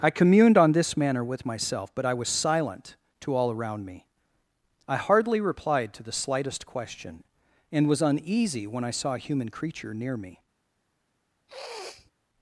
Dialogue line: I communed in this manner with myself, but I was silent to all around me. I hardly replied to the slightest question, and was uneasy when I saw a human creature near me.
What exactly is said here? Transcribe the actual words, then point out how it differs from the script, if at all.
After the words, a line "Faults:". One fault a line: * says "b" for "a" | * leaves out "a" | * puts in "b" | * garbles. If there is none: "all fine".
I communed on this manner with myself, but I was silent to all around me. I hardly replied to the slightest question, and was uneasy when I saw a human creature near me.
Faults:
* says "on" for "in"